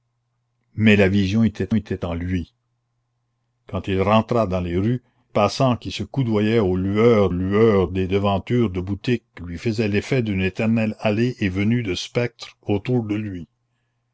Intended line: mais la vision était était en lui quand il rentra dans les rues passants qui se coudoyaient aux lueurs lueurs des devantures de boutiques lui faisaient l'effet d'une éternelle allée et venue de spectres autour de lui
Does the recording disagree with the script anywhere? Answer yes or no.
no